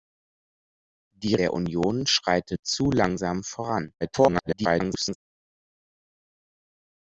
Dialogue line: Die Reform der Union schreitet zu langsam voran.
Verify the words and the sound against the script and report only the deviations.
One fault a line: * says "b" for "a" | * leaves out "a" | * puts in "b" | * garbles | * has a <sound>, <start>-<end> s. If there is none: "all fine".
* leaves out "Reform"
* garbles